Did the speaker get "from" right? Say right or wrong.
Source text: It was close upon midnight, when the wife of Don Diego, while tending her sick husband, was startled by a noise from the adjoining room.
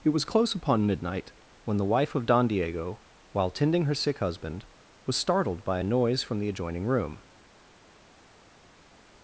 right